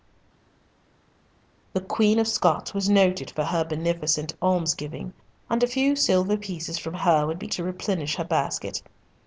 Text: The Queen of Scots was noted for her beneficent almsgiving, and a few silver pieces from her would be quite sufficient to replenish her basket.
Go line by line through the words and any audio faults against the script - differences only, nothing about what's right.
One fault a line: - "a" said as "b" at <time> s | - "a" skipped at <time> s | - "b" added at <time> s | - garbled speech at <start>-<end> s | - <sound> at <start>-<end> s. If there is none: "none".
- "quite sufficient" skipped at 7.5 s